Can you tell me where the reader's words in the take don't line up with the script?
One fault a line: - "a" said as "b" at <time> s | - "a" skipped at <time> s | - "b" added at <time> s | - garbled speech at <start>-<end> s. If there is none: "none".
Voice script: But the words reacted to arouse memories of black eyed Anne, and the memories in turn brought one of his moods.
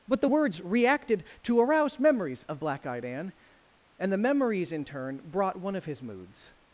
none